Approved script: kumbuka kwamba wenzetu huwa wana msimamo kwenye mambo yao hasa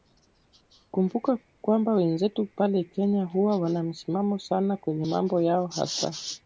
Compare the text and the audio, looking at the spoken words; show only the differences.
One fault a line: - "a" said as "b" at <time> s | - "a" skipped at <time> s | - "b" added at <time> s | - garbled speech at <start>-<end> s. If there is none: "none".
- "pale kenya" added at 2.5 s
- "sana" added at 4.4 s